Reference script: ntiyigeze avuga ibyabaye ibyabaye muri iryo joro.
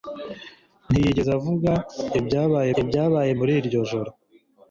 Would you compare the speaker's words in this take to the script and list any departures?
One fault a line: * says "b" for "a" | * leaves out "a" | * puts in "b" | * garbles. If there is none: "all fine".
all fine